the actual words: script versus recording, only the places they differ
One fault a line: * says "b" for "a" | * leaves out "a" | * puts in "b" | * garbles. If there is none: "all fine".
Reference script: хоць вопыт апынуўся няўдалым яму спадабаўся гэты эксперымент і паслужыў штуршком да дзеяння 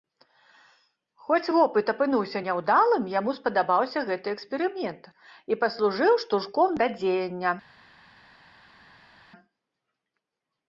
all fine